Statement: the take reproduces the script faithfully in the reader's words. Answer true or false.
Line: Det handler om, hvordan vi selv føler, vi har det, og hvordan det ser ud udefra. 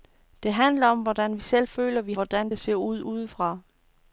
false